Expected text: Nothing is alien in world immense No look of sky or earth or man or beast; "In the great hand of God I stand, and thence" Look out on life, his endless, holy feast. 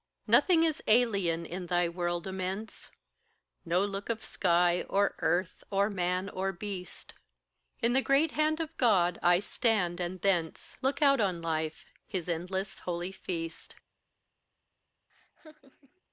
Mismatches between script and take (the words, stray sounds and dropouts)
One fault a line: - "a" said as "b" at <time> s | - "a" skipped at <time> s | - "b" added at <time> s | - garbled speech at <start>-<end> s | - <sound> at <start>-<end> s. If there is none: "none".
- "thy" added at 1.7 s
- laugh at 15.1-16.0 s